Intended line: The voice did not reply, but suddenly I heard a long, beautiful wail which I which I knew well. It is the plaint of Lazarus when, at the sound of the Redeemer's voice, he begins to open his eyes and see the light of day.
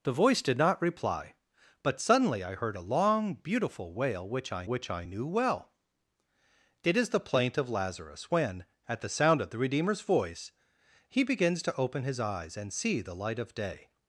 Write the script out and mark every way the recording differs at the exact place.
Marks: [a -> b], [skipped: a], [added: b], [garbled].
The voice did not reply, but suddenly I heard a long, beautiful wail which I which I knew well. It is the plaint of Lazarus when, at the sound of the Redeemer's voice, he begins to open his eyes and see the light of day.